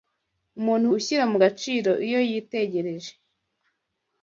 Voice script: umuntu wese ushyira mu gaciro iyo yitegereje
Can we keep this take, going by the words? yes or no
no